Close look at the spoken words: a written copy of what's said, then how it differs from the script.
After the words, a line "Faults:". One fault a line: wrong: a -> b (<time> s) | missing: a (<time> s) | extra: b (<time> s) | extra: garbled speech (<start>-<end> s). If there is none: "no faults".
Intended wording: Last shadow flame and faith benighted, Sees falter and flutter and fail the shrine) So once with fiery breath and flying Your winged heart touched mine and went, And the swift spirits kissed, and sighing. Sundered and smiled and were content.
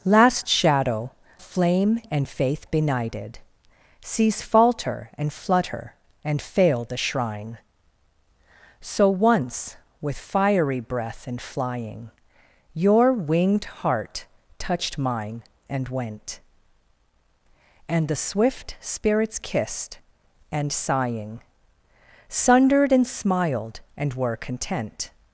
Last shadow flame and faith benighted, Sees falter and flutter and fail the shrine) So once with fiery breath and flying Your winged heart touched mine and went, And the swift spirits kissed, and sighing. Sundered and smiled and were content.
Faults:
no faults